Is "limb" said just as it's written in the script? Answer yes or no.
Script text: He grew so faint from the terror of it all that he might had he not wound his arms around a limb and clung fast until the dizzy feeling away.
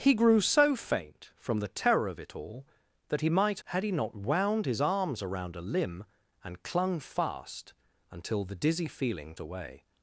yes